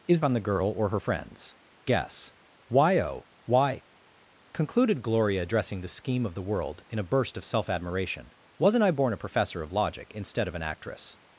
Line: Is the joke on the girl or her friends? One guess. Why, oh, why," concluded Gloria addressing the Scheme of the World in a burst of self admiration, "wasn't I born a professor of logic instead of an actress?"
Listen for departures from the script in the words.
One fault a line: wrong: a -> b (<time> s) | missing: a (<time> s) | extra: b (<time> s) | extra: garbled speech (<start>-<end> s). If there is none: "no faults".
missing: the joke (0.2 s)
missing: One (1.6 s)